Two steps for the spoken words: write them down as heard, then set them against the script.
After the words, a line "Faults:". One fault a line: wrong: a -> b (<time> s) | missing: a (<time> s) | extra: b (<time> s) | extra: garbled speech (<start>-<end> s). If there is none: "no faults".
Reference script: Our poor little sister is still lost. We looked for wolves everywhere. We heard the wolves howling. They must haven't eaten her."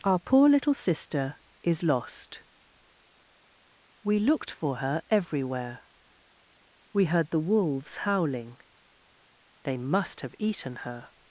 Our poor little sister is lost. We looked for her everywhere. We heard the wolves howling. They must have eaten her."
Faults:
missing: still (1.8 s)
wrong: wolves -> her (4.8 s)
wrong: haven't -> have (10.2 s)